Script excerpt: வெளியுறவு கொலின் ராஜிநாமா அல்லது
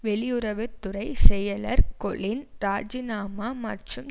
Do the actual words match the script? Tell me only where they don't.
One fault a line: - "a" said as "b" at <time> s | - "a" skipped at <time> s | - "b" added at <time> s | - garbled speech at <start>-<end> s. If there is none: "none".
- "துறை செயலர்" added at 0.8 s
- "அல்லது" said as "மற்றும்" at 3.6 s